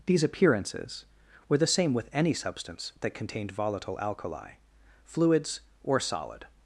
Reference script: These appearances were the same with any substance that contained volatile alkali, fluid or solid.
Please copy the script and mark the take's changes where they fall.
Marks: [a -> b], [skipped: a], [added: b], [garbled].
These appearances were the same with any substance that contained volatile alkali, [fluid -> fluids] or solid.